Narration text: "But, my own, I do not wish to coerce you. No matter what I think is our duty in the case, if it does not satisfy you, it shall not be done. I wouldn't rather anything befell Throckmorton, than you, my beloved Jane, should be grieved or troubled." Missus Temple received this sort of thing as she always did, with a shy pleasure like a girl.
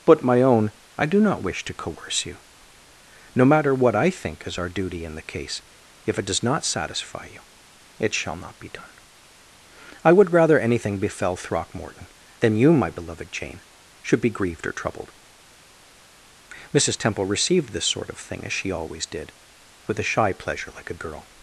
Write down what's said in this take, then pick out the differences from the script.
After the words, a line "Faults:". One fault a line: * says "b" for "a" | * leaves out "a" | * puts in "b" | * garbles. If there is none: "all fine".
"But, my own, I do not wish to coerce you. No matter what I think is our duty in the case, if it does not satisfy you, it shall not be done. I would rather anything befell Throckmorton, than you, my beloved Jane, should be grieved or troubled." Missus Temple received this sort of thing as she always did, with a shy pleasure like a girl.
Faults:
* says "would" for "wouldn't"